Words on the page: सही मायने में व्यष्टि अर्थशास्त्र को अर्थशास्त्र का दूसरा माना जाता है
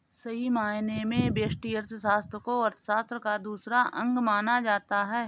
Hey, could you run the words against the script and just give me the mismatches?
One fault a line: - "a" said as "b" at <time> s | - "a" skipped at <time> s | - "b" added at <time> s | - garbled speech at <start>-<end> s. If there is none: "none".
- "अंग" added at 4.0 s